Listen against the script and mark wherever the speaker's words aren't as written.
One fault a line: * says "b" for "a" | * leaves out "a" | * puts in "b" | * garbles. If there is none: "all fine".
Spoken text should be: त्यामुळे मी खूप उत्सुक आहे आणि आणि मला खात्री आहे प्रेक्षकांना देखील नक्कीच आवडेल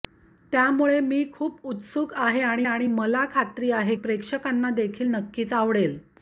all fine